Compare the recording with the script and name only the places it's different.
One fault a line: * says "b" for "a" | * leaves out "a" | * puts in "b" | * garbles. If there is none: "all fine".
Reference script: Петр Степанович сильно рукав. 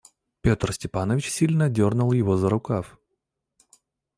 * puts in "дернул его за"